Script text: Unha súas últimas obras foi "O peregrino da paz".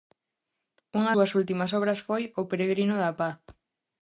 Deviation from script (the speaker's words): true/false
false